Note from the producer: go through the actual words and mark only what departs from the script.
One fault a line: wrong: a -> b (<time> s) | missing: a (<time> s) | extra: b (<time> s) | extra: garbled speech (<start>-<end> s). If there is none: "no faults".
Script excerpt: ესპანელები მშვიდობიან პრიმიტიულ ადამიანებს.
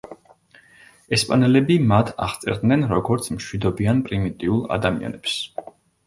extra: მათ აღწერდნენ როგორც (1.9 s)